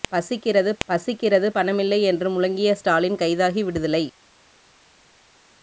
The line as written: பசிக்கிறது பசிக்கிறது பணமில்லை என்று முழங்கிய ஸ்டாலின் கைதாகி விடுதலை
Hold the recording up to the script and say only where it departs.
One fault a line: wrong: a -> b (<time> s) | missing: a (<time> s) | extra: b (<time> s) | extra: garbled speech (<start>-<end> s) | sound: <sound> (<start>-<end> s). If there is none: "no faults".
no faults